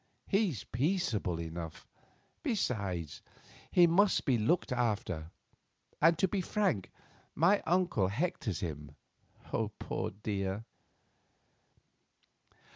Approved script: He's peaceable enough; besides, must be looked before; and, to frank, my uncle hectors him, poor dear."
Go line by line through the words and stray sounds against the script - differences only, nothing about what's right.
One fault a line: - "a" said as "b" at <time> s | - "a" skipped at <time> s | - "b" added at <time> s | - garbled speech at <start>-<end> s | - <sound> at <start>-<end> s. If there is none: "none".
- "he" added at 3.7 s
- "before" said as "after" at 4.7 s
- "be" added at 6.3 s